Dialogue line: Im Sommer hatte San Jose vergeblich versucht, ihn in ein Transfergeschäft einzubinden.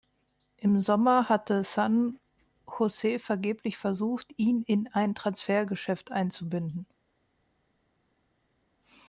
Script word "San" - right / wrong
right